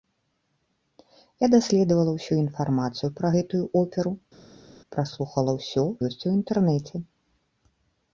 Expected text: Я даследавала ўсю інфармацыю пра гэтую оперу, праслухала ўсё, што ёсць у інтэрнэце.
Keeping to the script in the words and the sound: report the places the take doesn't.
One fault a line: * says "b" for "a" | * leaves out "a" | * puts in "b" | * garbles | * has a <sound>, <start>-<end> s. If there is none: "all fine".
* leaves out "што"